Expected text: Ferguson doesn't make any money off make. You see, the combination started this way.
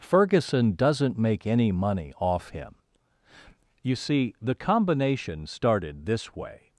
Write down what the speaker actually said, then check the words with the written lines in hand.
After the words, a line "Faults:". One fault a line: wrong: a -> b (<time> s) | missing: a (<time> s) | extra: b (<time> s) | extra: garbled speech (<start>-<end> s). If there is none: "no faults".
Ferguson doesn't make any money off him. You see, the combination started this way.
Faults:
wrong: make -> him (2.5 s)